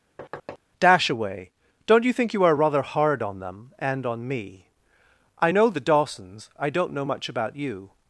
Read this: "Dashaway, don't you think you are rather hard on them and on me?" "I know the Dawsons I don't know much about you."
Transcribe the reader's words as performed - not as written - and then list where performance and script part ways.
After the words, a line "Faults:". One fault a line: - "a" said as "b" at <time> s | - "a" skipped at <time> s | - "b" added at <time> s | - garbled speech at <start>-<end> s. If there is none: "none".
"Dashaway, don't you think you are rather hard on them and on me?" "I know the Dawsons I don't know much about you."
Faults:
none